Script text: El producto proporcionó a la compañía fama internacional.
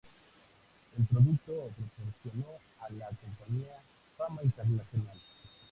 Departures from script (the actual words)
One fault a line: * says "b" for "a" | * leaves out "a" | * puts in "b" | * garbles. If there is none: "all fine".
all fine